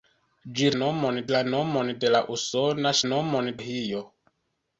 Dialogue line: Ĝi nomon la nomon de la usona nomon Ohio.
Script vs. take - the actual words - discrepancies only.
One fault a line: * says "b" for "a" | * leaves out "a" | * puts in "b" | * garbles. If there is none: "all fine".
all fine